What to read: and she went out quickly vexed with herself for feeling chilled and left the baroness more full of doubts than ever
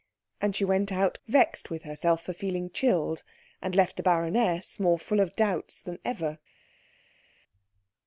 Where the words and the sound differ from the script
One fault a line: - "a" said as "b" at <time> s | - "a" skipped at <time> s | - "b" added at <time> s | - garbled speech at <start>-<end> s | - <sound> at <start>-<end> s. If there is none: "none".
- "quickly" skipped at 1.2 s